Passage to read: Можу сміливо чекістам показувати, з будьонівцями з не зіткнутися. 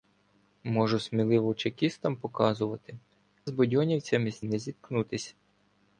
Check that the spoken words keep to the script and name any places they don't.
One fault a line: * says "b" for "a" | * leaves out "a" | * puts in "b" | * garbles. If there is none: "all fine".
all fine